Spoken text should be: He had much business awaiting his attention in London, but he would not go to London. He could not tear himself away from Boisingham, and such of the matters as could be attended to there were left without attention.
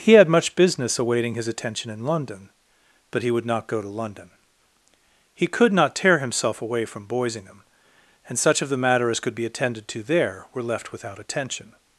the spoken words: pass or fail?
fail